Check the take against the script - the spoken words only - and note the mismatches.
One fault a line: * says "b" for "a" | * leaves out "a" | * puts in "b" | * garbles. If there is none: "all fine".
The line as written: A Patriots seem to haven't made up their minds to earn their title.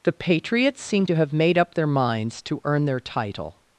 * says "The" for "A"
* says "have" for "haven't"